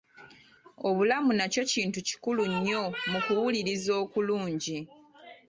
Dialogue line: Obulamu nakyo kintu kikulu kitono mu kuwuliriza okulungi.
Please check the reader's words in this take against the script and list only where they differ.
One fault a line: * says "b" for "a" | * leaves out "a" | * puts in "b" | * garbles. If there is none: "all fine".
* says "nnyo" for "kitono"